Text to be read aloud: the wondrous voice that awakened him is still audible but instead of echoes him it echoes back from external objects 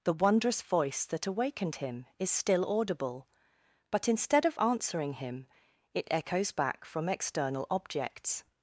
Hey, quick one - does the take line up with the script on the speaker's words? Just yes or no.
no